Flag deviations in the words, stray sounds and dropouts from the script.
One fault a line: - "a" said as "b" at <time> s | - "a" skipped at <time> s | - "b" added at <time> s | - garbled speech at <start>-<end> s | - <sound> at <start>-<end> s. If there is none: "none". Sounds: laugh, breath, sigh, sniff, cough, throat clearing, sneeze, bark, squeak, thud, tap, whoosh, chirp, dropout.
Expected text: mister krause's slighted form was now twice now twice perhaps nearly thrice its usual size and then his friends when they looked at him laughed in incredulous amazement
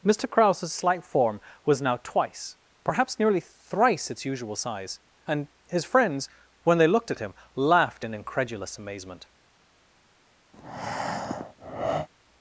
- "slighted" said as "slight" at 0.7 s
- "now twice" skipped at 2.6 s
- "then" skipped at 5.5 s
- breath at 10.5-12.1 s